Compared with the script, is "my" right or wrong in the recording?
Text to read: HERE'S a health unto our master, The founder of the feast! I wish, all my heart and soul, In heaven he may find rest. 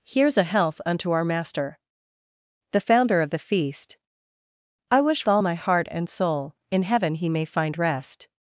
right